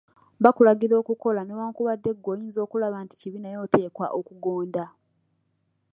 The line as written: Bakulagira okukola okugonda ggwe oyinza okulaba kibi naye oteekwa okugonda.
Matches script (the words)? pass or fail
fail